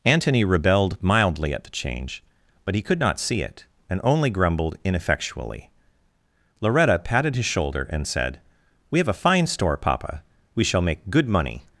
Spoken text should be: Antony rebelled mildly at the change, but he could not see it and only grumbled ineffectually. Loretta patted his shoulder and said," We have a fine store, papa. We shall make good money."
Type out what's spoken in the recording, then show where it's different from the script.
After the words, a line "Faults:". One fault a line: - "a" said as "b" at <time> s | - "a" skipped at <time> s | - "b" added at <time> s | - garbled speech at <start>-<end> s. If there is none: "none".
Antony rebelled mildly at the change, but he could not see it and only grumbled ineffectually. Loretta patted his shoulder and said," We have a fine store, papa. We shall make good money."
Faults:
none